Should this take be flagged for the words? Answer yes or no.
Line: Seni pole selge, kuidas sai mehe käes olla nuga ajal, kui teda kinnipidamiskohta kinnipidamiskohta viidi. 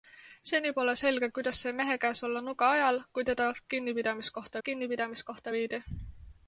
no